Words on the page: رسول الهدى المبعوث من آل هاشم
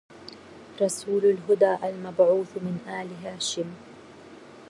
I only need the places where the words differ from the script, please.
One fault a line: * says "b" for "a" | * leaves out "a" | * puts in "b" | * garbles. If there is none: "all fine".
all fine